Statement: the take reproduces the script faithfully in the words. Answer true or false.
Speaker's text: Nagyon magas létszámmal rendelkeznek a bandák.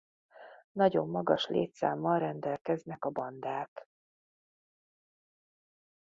true